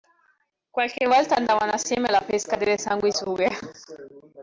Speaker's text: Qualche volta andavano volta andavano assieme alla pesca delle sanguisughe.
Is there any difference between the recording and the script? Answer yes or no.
yes